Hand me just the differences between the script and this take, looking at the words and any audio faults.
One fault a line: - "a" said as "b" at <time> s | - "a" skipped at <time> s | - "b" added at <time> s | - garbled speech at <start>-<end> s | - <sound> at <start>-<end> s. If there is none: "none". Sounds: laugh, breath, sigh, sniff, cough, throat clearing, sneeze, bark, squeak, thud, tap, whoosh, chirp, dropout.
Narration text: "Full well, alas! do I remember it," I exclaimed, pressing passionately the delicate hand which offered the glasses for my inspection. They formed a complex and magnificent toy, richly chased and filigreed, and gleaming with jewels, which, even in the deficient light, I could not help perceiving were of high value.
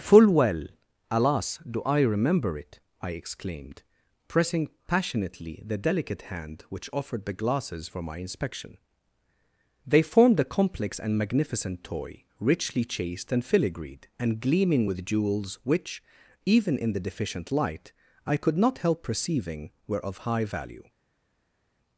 none